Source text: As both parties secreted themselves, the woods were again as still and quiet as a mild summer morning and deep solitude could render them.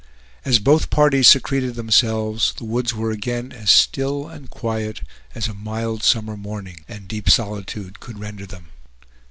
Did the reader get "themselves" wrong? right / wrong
right